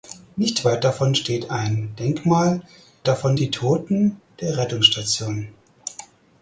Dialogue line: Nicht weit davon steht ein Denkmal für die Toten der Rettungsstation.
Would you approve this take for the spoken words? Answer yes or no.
no